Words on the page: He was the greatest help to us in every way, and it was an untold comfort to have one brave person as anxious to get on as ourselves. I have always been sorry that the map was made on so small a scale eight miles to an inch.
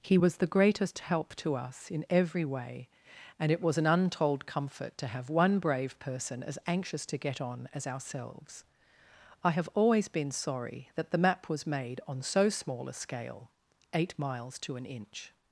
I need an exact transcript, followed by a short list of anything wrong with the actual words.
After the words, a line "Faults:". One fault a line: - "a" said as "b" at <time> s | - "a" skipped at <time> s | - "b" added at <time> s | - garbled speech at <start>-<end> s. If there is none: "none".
He was the greatest help to us in every way, and it was an untold comfort to have one brave person as anxious to get on as ourselves. I have always been sorry that the map was made on so small a scale eight miles to an inch.
Faults:
none